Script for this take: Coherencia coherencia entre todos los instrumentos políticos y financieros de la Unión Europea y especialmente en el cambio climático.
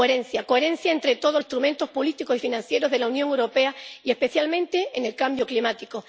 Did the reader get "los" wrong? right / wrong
wrong